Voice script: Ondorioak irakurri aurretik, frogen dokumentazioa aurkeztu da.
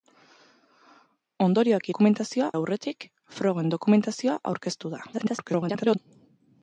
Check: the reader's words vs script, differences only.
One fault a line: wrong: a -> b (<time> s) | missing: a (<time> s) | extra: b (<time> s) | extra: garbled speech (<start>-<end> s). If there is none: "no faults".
wrong: irakurri -> dokumentazioa (1.9 s)
extra: garbled speech (5.1-6.0 s)